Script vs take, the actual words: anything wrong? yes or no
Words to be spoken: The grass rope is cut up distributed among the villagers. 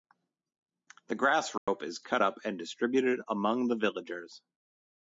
yes